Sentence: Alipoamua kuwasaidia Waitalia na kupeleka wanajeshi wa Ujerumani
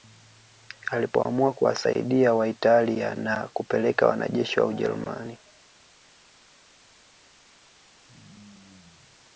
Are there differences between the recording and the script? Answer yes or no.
no